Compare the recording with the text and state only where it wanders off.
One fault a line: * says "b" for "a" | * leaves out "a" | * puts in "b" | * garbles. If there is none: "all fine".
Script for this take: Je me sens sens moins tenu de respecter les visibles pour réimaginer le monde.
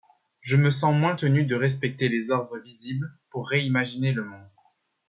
* leaves out "sens"
* puts in "ordres"